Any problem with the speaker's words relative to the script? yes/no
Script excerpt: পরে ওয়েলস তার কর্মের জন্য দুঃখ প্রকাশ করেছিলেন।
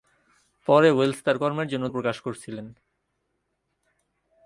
yes